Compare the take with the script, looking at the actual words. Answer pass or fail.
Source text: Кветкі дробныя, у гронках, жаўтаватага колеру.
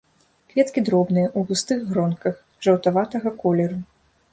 fail